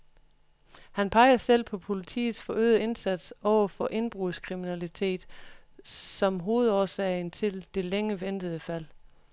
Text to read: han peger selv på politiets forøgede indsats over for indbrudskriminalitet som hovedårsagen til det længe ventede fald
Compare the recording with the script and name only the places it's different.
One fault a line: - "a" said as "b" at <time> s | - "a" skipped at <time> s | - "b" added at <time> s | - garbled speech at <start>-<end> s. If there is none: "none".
none